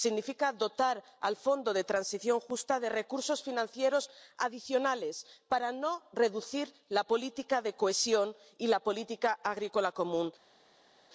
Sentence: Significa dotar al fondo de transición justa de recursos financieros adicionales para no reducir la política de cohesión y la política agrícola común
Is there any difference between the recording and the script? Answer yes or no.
no